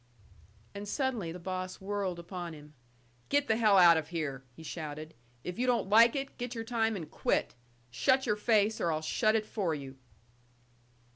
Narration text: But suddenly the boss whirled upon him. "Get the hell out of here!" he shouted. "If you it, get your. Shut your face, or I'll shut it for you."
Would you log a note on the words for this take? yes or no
yes